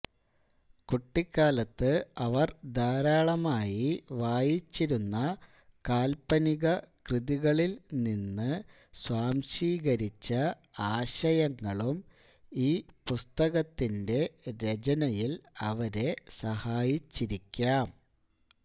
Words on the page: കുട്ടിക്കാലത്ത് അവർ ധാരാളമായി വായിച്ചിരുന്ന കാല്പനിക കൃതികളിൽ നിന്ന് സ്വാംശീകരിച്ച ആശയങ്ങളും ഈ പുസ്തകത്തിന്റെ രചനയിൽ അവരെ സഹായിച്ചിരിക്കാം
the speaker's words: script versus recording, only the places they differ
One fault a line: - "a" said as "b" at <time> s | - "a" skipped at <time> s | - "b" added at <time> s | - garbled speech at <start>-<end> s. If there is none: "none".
none